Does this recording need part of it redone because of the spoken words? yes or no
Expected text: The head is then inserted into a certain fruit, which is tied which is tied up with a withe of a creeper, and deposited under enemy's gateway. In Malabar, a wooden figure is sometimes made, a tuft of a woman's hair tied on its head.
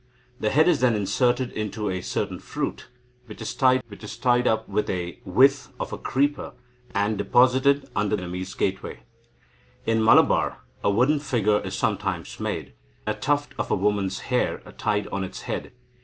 no